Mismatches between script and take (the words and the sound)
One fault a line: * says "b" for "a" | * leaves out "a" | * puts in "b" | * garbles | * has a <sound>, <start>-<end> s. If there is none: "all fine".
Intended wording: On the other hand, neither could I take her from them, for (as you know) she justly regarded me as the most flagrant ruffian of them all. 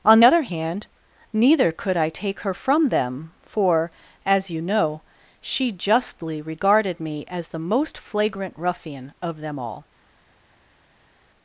* leaves out "the"